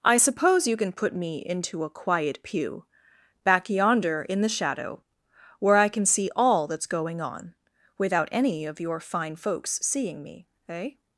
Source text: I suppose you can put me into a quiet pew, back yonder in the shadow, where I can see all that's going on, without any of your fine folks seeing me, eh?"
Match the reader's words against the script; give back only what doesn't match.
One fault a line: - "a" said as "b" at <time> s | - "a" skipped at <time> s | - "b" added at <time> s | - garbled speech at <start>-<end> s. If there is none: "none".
none